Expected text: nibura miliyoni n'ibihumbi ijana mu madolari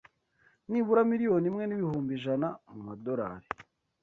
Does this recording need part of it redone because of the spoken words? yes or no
yes